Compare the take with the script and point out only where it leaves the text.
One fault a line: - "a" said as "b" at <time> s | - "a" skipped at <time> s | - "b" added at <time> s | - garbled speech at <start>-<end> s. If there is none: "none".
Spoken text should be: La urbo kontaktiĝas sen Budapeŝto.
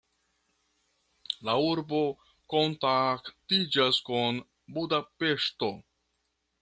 - "sen" said as "kun" at 4.1 s